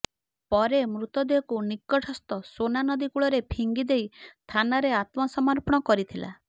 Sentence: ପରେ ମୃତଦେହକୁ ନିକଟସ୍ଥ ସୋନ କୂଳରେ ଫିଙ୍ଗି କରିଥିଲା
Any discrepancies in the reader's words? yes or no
yes